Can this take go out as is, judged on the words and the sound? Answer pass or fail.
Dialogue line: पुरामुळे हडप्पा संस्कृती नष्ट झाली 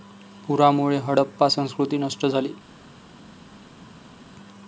pass